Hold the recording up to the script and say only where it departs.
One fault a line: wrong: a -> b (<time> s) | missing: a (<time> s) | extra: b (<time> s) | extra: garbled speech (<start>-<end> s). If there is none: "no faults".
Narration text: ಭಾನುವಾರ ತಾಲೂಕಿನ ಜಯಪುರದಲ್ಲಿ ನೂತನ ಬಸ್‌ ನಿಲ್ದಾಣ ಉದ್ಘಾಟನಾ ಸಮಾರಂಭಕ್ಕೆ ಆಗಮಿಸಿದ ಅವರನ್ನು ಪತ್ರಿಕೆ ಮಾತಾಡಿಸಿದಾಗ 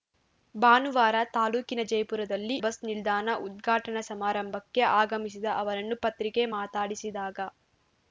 missing: ನೂತನ (2.6 s)